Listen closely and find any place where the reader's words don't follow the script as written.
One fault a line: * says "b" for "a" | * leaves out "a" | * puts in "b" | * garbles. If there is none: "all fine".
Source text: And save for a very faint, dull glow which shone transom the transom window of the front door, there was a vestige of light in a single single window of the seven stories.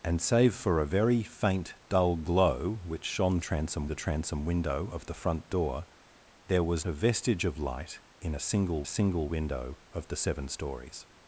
all fine